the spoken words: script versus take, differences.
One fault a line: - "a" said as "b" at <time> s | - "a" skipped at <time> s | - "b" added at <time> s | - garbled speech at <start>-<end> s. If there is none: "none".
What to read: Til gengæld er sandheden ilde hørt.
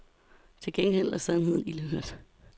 none